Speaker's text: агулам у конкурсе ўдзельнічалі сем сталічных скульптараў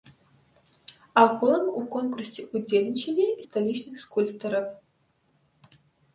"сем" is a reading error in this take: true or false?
true